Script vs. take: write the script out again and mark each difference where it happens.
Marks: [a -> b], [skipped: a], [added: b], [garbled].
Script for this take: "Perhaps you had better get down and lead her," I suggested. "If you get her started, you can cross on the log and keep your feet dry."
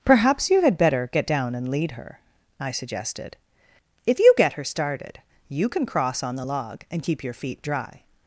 "Perhaps you had better get down and lead her," I suggested. "If you get her started, you can cross on the log and keep your feet dry."